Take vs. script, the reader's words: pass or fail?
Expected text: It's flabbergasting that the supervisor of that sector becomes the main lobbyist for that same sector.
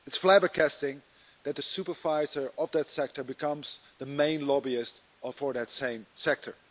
pass